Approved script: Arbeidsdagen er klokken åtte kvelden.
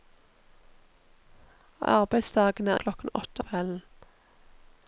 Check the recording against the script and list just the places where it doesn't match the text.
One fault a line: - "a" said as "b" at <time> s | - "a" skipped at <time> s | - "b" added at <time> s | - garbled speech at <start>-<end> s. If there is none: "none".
none